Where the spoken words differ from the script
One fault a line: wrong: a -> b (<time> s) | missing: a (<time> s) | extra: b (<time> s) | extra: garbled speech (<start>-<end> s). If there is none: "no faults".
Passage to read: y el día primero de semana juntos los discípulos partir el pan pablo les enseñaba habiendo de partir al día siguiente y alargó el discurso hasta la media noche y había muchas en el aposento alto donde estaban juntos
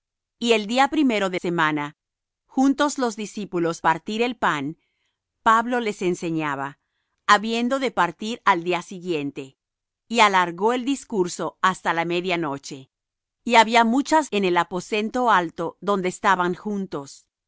no faults